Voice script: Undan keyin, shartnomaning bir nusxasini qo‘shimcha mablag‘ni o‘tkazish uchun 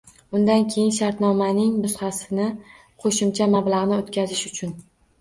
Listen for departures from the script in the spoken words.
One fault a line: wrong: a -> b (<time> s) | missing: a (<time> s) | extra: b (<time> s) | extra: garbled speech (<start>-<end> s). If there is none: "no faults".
missing: bir (1.8 s)